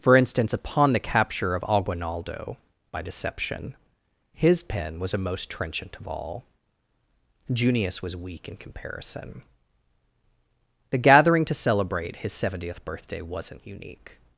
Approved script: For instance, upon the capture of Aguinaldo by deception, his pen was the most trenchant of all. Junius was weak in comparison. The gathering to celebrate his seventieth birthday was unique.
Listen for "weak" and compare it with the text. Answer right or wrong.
right